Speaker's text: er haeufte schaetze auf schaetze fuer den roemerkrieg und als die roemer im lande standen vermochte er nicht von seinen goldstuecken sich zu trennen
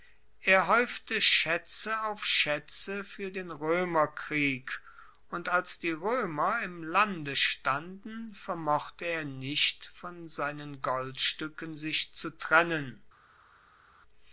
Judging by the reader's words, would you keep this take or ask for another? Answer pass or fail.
pass